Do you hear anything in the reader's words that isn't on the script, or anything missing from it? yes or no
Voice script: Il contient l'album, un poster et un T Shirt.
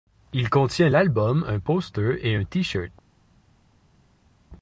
no